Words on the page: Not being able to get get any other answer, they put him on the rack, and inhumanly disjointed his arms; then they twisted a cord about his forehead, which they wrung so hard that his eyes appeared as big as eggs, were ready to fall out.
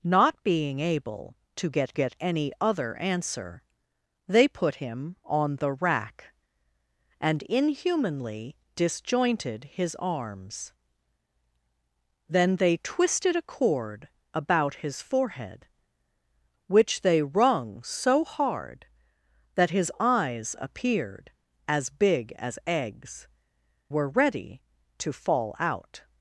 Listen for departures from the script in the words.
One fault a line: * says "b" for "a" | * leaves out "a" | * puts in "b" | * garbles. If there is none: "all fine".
all fine